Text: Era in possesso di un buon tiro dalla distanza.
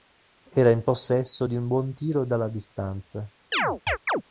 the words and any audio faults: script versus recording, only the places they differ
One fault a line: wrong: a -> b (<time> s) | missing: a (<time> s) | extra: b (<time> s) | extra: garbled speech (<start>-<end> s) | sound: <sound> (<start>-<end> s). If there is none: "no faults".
sound: chirp (3.5-4.2 s)